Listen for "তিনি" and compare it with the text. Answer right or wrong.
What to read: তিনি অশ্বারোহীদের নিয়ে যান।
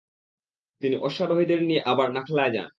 right